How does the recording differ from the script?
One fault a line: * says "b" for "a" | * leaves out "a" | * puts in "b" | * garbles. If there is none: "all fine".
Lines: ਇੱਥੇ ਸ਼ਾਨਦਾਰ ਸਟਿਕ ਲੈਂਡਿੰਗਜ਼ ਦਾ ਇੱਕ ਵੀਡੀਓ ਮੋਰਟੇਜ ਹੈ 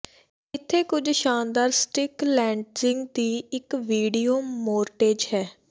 * puts in "ਕੁਝ"
* says "ਦੀ" for "ਦਾ"